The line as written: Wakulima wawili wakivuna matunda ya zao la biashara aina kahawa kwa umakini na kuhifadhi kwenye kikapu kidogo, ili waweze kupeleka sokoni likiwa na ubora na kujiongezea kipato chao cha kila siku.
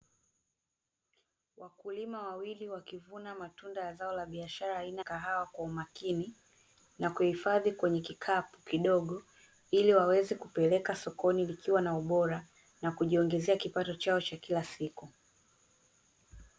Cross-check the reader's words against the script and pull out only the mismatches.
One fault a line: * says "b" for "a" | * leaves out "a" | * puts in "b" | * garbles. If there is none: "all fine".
all fine